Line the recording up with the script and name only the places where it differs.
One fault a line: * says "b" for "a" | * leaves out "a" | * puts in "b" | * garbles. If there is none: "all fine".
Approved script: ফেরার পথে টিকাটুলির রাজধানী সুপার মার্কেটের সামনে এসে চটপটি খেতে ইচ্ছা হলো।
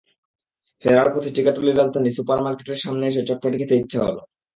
all fine